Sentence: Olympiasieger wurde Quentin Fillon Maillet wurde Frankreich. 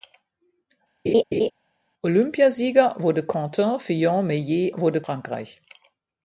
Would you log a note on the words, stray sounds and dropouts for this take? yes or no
yes